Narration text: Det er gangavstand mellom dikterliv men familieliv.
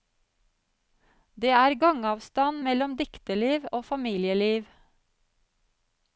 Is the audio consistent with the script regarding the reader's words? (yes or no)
no